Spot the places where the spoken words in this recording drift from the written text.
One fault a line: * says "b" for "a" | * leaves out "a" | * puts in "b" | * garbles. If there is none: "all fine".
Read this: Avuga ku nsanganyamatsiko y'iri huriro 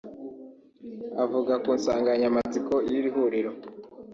all fine